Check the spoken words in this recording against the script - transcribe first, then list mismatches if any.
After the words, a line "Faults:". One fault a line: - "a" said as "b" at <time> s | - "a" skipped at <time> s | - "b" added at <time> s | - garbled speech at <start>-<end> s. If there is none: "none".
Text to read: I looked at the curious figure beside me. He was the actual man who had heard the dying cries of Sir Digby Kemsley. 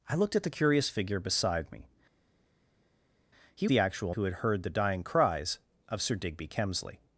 I looked at the curious figure beside me. He the actual who had heard the dying cries of Sir Digby Kemsley.
Faults:
- "was" skipped at 3.7 s
- "man" skipped at 4.1 s